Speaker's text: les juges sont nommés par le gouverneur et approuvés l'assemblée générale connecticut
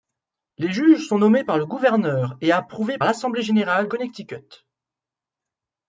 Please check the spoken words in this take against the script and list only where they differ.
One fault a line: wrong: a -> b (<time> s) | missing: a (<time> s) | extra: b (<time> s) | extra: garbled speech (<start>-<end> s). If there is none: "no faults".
no faults